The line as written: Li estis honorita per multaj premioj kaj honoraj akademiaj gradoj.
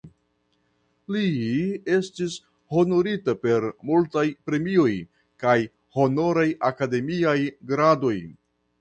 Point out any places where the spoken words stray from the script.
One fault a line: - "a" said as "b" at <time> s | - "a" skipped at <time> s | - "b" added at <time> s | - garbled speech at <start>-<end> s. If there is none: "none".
none